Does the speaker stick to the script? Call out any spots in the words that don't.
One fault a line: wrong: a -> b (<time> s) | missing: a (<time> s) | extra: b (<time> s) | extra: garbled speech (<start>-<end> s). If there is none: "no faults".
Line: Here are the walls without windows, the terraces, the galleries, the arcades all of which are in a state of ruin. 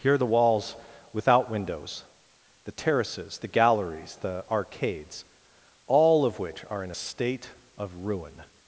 no faults